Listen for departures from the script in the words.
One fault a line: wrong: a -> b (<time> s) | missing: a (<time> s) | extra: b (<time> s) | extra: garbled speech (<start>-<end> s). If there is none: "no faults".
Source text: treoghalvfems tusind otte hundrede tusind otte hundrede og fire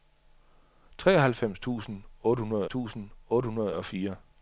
no faults